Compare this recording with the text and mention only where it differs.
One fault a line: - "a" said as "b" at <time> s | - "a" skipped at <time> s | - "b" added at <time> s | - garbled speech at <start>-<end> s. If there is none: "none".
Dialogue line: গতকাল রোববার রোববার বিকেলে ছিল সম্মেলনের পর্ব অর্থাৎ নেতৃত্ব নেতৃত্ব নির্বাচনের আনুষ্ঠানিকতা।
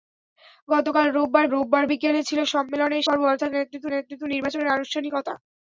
none